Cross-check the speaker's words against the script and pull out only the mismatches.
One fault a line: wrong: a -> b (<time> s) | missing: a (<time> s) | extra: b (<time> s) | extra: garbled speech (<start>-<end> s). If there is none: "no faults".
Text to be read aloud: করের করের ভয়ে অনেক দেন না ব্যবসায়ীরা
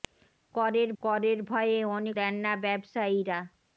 no faults